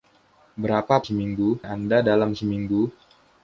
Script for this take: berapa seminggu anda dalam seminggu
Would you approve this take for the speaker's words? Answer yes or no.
yes